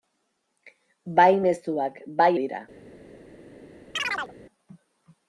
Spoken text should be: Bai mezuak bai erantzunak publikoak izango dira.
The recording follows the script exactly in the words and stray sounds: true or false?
false